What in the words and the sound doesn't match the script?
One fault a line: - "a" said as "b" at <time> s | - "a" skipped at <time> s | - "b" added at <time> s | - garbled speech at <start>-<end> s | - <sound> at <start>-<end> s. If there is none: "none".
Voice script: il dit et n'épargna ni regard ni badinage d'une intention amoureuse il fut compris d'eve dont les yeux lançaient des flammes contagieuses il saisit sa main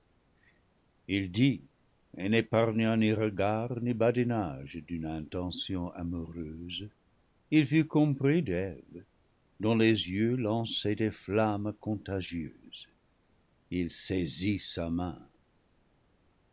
none